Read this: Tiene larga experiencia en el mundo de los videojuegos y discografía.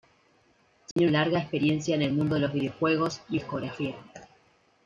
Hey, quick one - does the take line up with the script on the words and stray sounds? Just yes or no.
no